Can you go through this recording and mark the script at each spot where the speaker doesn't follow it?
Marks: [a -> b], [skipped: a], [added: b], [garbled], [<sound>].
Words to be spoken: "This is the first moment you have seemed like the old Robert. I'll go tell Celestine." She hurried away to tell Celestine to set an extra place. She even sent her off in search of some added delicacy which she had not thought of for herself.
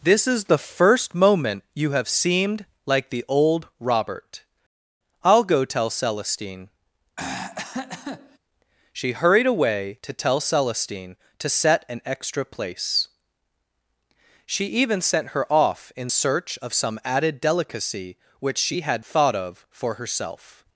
"This is the first moment you have seemed like the old Robert. I'll go tell Celestine." [throat clearing] She hurried away to tell Celestine to set an extra place. She even sent her off in search of some added delicacy which she had [skipped: not] thought of for herself.